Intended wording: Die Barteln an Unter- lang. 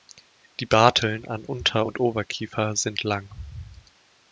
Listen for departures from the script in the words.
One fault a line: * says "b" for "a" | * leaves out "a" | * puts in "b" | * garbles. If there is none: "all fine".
* puts in "und Oberkiefer sind"